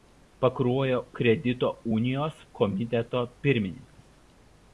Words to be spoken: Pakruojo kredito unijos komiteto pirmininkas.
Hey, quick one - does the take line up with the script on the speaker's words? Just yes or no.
yes